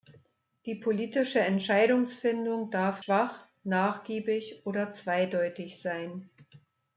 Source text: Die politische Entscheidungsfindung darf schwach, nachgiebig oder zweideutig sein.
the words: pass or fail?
pass